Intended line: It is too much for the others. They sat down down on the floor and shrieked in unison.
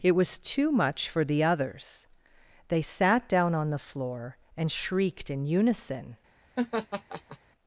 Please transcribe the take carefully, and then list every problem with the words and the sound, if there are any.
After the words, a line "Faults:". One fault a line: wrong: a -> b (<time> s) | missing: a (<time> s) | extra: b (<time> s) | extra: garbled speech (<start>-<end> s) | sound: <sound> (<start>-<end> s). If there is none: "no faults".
It was too much for the others. They sat down on the floor and shrieked in unison.
Faults:
wrong: is -> was (0.1 s)
missing: down (3.5 s)
sound: laugh (6.6-7.4 s)